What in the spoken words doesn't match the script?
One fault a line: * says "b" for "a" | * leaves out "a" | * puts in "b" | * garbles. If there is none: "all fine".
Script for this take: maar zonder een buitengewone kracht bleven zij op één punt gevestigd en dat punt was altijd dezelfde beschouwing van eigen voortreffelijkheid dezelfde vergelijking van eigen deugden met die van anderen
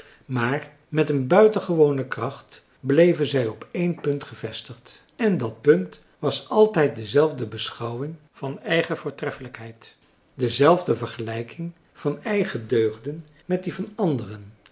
* says "met" for "zonder"